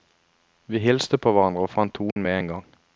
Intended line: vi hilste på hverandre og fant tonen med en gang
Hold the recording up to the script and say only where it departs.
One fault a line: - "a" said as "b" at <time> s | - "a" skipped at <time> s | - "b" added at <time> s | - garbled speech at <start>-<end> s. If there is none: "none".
none